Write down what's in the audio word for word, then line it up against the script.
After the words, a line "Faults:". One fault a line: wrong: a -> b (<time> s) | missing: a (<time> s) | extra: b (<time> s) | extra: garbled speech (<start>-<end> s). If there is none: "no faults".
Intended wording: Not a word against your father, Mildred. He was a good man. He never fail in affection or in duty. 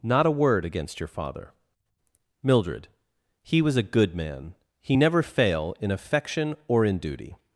Not a word against your father, Mildred. He was a good man. He never fail in affection or in duty.
Faults:
no faults